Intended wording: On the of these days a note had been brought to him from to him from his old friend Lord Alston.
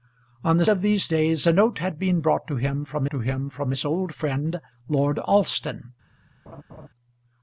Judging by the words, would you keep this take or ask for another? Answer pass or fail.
pass